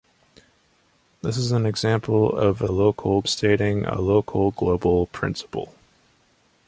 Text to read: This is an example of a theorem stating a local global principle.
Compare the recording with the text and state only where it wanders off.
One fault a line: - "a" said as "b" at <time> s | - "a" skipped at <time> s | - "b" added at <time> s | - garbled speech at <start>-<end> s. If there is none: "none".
- "theorem" said as "local" at 2.7 s